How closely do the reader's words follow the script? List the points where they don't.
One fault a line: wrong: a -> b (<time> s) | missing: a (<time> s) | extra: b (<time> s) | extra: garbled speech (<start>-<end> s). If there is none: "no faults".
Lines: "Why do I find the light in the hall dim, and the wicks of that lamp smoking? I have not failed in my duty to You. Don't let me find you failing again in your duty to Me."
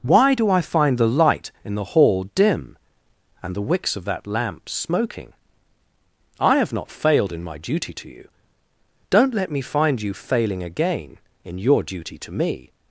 no faults